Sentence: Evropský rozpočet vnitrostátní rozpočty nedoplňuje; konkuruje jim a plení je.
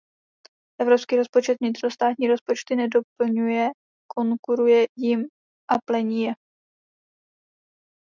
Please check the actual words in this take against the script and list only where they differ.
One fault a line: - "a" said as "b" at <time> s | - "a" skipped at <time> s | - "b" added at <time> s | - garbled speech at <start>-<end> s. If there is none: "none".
none